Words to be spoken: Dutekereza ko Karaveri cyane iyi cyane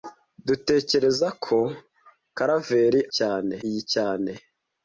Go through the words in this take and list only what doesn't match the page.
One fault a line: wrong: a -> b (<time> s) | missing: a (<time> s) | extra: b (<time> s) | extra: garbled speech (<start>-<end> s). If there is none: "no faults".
no faults